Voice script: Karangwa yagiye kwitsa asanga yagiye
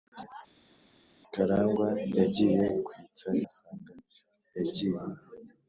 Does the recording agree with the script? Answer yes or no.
yes